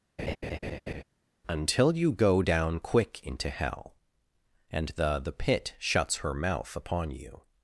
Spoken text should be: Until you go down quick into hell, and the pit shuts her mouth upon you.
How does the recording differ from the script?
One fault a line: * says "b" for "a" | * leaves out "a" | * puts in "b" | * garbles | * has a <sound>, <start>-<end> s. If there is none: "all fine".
* has a laugh, 0.2-1.0 s
* puts in "the"